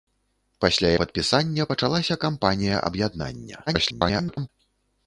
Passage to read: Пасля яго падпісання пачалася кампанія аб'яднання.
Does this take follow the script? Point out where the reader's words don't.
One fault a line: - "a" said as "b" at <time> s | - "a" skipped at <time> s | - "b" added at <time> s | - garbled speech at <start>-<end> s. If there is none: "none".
- "яго" skipped at 0.9 s
- garbled speech at 3.7-4.5 s